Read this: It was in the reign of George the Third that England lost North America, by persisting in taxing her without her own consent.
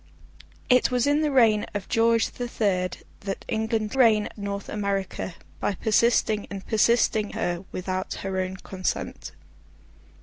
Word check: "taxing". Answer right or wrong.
wrong